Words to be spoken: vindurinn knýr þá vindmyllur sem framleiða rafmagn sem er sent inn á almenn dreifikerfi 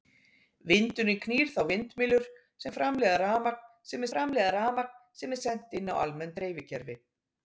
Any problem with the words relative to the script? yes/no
yes